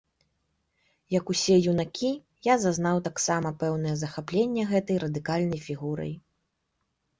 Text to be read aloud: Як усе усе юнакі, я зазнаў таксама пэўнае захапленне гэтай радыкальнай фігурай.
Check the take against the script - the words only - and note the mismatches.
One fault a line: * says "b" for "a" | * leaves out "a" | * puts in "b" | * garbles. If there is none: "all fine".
* leaves out "усе"